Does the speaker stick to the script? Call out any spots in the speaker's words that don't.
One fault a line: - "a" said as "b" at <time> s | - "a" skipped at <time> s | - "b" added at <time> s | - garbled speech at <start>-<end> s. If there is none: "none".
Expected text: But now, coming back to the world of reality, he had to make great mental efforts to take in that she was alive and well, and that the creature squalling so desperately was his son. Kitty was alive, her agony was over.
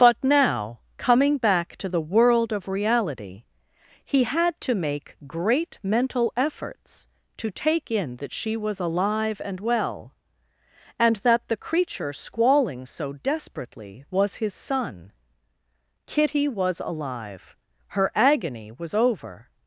none